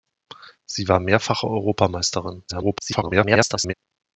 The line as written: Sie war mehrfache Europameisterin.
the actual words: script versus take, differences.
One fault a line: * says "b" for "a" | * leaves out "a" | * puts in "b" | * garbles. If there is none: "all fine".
* garbles